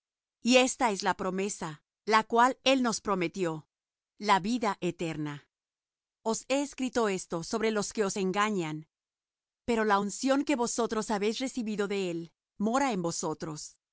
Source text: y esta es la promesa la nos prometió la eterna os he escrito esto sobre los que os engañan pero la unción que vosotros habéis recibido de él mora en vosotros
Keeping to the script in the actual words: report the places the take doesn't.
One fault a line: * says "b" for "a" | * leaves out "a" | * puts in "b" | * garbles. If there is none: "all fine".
* puts in "cual él"
* puts in "vida"